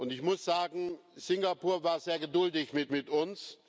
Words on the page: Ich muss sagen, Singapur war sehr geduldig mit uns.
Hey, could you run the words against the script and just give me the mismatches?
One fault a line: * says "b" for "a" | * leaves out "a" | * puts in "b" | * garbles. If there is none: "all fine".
* puts in "mit"